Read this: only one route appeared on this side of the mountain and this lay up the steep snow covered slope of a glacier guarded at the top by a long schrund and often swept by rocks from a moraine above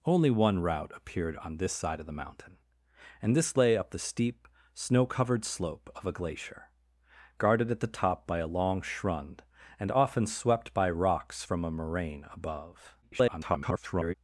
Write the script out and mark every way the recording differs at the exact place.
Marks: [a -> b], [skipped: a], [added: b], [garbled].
only one route appeared on this side of the mountain and this lay up the steep snow covered slope of a glacier guarded at the top by a long schrund and often swept by rocks from a moraine above [garbled]